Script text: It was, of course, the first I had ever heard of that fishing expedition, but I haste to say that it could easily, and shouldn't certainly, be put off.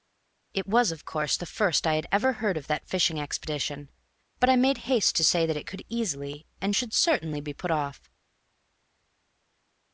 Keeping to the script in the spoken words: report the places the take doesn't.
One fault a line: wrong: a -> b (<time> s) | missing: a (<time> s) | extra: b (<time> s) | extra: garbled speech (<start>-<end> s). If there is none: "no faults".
extra: made (4.5 s)
wrong: shouldn't -> should (6.7 s)